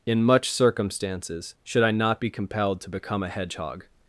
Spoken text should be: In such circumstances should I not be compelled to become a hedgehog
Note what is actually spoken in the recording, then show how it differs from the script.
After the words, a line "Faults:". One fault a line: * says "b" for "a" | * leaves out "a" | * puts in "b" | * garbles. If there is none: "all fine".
In much circumstances should I not be compelled to become a hedgehog
Faults:
* says "much" for "such"